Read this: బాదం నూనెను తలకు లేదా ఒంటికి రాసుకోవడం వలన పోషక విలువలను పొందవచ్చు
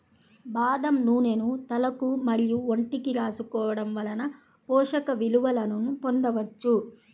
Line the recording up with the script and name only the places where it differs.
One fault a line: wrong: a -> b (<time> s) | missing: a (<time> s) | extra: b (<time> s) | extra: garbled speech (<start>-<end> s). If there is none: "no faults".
wrong: లేదా -> మరియు (2.3 s)